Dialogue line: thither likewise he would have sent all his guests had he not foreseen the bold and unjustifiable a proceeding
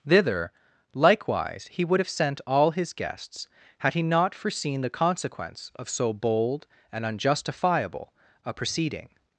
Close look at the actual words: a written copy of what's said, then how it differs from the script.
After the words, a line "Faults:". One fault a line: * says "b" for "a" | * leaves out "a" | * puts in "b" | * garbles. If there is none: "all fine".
thither likewise he would have sent all his guests had he not foreseen the consequence of so bold and unjustifiable a proceeding
Faults:
* puts in "consequence of so"